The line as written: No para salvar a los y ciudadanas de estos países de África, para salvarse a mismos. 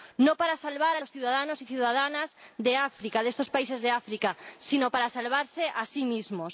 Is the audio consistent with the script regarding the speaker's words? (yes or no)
no